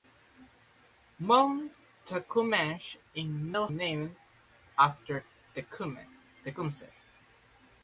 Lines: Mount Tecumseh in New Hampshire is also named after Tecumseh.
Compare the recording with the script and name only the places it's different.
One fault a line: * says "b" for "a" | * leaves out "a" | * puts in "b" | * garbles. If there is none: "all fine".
* leaves out "Hampshire is also"